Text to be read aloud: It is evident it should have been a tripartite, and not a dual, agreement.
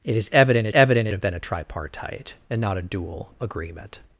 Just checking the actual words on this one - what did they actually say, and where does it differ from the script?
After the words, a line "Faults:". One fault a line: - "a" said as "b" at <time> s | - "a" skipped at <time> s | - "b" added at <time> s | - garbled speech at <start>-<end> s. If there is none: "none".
It is evident it evident have been a tripartite, and not a dual, agreement.
Faults:
- "should" said as "evident" at 0.7 s